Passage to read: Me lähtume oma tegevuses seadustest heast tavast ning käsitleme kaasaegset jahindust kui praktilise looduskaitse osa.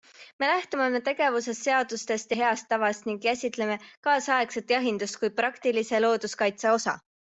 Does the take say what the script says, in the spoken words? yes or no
yes